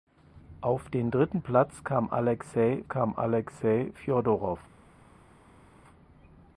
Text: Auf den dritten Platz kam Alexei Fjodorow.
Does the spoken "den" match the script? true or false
true